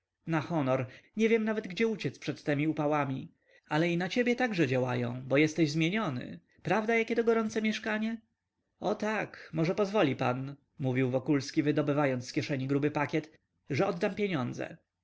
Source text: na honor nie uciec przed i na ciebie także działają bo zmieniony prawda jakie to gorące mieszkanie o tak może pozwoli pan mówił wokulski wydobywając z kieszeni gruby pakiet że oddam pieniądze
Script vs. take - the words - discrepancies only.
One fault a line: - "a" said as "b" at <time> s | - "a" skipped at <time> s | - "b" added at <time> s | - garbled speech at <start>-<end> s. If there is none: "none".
- "wiem nawet gdzie" added at 1.3 s
- "temi upałami ale" added at 2.4 s
- "jesteś" added at 5.4 s